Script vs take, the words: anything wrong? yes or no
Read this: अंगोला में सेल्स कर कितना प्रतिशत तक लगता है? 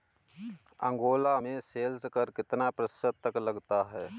no